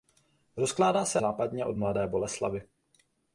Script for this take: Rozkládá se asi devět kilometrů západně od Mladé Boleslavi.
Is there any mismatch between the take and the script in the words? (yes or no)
yes